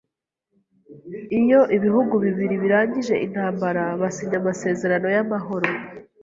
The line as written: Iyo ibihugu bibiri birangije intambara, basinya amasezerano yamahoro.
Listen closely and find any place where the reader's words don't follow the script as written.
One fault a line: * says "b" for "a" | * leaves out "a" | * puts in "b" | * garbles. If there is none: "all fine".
all fine